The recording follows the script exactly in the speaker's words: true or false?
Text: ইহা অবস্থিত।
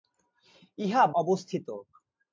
true